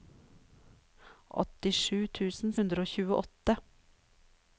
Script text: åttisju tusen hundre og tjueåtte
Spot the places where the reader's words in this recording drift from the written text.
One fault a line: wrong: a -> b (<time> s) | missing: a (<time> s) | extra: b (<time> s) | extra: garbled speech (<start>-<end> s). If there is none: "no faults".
no faults